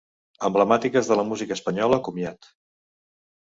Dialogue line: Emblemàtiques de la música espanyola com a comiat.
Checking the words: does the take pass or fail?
fail